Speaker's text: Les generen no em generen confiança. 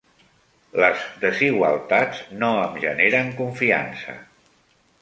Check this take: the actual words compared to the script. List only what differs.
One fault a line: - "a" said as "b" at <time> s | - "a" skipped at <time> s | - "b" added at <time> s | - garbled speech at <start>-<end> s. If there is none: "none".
- "generen" said as "desigualtats" at 1.2 s